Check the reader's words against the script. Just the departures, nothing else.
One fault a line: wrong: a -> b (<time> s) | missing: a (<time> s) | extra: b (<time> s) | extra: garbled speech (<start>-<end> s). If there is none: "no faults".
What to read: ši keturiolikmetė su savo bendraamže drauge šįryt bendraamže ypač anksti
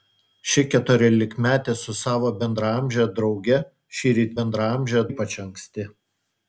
no faults